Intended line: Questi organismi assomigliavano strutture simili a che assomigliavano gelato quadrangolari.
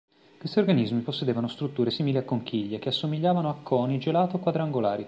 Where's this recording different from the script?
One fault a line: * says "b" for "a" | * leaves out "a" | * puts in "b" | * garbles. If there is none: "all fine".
* says "possedevano" for "assomigliavano"
* puts in "conchiglie"
* puts in "a coni"